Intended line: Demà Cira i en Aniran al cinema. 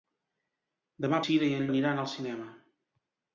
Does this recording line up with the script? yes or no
yes